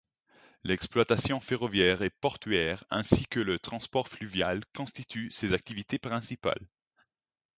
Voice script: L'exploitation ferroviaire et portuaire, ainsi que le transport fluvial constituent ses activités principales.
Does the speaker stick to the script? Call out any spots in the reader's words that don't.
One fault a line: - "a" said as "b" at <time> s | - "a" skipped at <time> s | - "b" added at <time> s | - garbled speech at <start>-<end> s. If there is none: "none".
none